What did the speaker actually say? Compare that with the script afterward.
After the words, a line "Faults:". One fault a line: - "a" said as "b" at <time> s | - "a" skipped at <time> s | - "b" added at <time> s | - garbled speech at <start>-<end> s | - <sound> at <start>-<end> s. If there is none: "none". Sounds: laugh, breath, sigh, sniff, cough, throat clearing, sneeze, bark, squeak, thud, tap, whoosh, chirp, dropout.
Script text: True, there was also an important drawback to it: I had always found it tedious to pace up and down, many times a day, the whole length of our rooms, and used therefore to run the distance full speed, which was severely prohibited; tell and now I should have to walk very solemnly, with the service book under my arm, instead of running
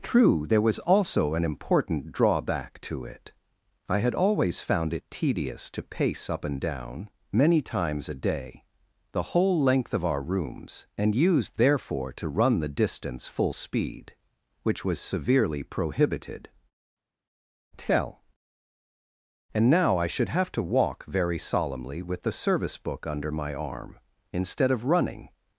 True, there was also an important drawback to it: I had always found it tedious to pace up and down, many times a day, the whole length of our rooms, and used therefore to run the distance full speed, which was severely prohibited; tell and now I should have to walk very solemnly, with the service book under my arm, instead of running
Faults:
none